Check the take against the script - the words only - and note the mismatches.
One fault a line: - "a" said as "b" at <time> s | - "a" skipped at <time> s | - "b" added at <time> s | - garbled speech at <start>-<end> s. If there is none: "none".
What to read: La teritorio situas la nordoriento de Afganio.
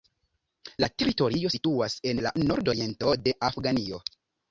- "en" added at 2.1 s